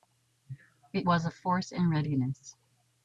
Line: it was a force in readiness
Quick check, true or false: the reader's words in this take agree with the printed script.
true